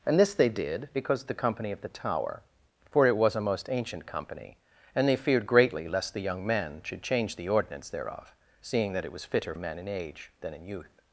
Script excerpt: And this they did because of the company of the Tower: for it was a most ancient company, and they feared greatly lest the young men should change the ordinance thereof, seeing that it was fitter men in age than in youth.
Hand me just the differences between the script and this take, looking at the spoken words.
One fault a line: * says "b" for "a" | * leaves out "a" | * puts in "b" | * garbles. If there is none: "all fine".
all fine